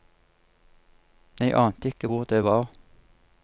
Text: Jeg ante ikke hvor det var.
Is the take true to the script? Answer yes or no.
yes